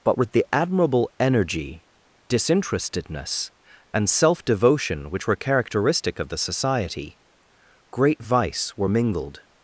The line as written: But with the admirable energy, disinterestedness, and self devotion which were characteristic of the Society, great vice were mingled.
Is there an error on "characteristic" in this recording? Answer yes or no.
no